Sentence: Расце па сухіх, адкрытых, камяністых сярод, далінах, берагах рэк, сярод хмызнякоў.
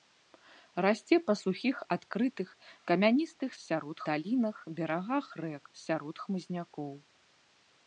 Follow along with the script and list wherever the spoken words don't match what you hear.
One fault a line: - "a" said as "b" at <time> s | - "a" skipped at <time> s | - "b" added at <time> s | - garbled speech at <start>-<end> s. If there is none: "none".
none